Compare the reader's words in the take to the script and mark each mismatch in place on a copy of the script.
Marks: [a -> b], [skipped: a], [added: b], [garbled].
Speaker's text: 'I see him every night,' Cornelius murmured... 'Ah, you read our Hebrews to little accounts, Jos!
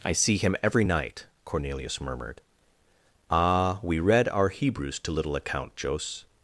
'I see him every night,' Cornelius murmured... 'Ah, [you -> we] read our Hebrews to little [accounts, -> account] Jos!